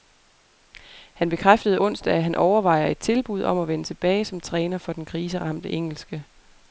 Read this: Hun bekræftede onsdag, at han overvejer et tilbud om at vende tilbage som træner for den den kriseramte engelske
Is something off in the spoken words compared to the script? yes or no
yes